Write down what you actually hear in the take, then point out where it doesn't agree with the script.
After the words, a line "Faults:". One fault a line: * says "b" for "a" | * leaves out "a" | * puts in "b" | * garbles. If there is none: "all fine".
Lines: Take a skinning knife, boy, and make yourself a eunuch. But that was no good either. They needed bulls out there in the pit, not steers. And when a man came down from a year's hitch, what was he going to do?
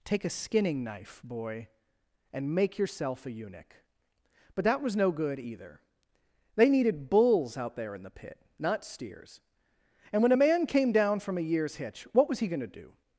Take a skinning knife, boy, and make yourself a eunuch. But that was no good either. They needed bulls out there in the pit, not steers. And when a man came down from a year's hitch, what was he going to do?
Faults:
all fine